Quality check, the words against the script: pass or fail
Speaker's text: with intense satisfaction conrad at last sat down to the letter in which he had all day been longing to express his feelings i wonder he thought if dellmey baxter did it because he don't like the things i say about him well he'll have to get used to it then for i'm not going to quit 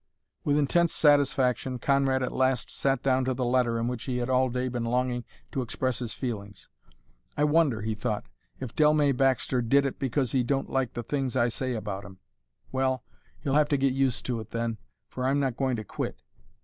pass